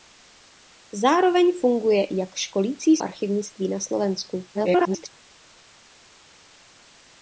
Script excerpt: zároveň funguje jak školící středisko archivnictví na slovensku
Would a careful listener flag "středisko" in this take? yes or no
yes